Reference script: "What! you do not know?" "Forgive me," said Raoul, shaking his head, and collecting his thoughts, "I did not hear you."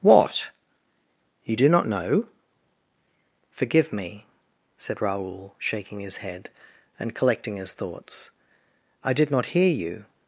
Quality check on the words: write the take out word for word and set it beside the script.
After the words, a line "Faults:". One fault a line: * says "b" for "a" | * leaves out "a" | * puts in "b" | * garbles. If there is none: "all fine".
"What! you do not know?" "Forgive me," said Raoul, shaking his head, and collecting his thoughts, "I did not hear you."
Faults:
all fine